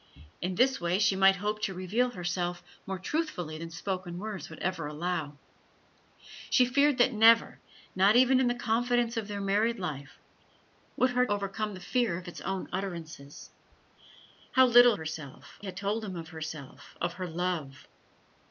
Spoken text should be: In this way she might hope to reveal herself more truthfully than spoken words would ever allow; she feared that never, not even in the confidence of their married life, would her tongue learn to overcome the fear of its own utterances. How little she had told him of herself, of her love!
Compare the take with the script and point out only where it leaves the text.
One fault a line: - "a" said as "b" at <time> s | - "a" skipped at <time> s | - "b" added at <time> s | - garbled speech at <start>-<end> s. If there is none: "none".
- "tongue learn to" skipped at 11.3 s
- "she" said as "herself" at 14.9 s